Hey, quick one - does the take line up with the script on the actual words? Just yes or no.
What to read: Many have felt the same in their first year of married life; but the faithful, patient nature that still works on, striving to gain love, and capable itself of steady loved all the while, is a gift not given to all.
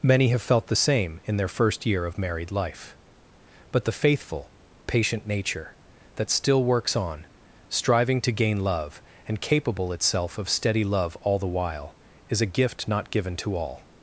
no